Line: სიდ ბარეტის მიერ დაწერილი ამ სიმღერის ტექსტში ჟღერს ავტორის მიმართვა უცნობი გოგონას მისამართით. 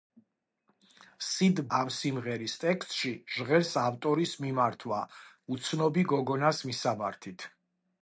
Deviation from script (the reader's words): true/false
true